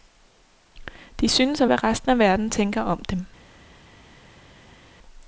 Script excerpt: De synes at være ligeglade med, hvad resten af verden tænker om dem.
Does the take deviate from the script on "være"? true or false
true